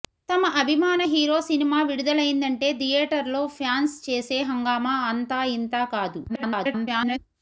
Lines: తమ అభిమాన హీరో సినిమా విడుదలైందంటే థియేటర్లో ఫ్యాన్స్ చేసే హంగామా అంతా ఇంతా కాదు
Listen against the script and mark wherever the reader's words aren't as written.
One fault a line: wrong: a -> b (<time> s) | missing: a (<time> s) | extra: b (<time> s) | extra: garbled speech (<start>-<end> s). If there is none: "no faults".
extra: garbled speech (6.3-7.2 s)